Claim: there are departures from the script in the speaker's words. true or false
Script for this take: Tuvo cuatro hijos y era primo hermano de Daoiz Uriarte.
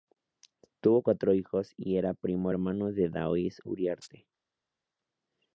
false